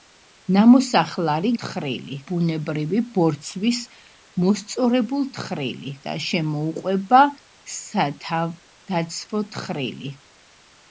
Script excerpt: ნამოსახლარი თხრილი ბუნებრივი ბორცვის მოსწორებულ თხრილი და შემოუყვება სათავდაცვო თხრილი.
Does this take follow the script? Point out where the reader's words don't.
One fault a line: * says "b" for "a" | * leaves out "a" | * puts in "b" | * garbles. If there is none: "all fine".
all fine